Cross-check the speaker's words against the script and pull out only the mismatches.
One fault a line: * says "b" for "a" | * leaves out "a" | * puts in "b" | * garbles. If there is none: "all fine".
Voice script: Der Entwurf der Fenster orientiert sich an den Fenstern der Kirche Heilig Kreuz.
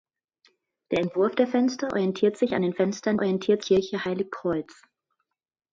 * says "orientiert" for "der"